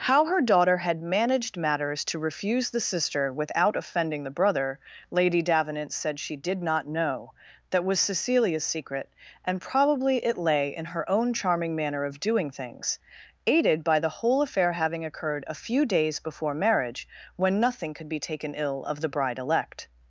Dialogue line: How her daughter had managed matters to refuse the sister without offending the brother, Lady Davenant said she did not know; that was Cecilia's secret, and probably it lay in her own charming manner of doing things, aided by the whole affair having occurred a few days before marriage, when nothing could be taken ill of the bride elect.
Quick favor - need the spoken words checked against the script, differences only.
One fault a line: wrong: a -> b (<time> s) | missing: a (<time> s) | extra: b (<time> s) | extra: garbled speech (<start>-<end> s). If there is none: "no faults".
no faults